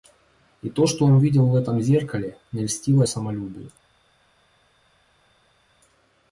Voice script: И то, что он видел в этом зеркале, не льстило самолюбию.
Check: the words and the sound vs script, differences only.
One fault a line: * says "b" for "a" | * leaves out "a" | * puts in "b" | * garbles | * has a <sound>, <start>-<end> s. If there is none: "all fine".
all fine